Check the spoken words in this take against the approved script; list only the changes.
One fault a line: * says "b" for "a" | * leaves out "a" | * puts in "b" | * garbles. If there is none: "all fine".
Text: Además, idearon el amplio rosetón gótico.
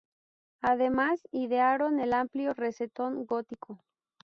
all fine